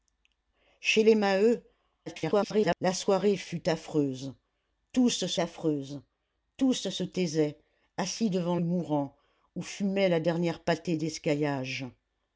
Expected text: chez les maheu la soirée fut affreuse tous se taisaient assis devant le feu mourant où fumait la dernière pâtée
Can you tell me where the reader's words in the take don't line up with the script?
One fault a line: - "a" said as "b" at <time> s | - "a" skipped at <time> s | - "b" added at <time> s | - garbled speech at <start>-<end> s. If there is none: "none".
- garbled speech at 2.1-2.8 s
- "affreuse tous se" added at 5.4 s
- "le feu" skipped at 8.6 s